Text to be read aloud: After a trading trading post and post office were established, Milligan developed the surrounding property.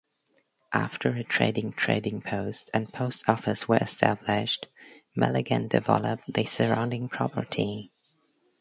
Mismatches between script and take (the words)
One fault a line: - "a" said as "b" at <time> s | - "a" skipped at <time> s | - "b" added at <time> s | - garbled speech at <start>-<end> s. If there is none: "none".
none